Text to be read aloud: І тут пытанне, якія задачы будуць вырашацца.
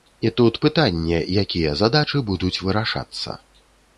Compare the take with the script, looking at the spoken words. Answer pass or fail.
pass